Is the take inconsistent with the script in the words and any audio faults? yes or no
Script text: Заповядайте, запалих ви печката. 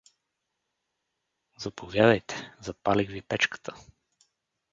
no